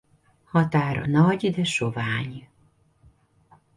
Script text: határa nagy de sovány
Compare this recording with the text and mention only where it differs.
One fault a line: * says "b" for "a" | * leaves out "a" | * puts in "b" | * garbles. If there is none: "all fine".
all fine